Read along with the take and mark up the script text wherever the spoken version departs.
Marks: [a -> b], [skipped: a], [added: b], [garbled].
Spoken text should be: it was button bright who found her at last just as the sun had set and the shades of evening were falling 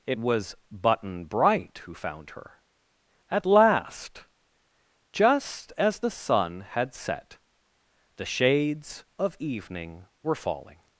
it was button bright who found her at last just as the sun had set [skipped: and] the shades of evening were falling